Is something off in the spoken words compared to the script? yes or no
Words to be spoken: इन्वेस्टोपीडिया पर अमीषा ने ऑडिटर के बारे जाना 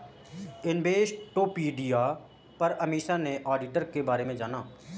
yes